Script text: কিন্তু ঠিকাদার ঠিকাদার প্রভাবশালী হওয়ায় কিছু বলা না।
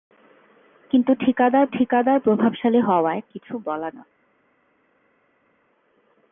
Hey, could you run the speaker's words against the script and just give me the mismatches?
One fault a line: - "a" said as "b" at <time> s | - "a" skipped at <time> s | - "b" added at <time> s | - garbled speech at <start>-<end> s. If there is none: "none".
none